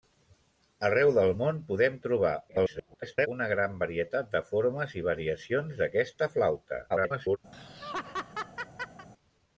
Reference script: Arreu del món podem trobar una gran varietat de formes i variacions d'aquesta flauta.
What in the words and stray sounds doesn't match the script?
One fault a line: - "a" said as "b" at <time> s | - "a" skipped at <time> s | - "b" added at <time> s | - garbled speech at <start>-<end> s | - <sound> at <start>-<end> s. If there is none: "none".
- garbled speech at 2.5-3.3 s
- garbled speech at 6.9-7.4 s
- laugh at 7.5-9.1 s